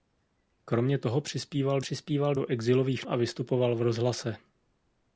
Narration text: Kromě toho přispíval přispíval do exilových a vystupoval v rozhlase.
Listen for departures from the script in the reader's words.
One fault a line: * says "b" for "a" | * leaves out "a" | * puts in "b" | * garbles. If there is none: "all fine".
all fine